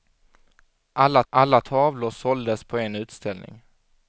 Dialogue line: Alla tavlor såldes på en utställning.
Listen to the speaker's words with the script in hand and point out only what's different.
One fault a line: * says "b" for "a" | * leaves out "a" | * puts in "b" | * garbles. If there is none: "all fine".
* puts in "alla"